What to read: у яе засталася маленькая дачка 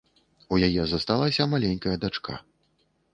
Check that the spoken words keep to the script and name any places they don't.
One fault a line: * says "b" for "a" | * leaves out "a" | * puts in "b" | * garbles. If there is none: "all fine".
all fine